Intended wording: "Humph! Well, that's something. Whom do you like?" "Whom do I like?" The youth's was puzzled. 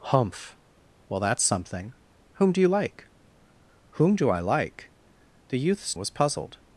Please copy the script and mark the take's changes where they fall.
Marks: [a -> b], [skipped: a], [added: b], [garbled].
"Humph! Well, that's something. Whom do you like?" "Whom do I like?" The youth's was puzzled.